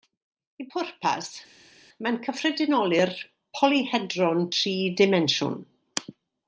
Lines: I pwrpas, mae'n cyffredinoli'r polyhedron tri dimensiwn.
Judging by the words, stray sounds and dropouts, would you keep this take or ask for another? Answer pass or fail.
pass